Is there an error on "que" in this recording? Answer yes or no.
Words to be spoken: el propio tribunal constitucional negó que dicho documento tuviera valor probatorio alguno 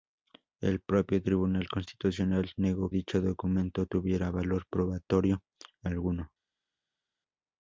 yes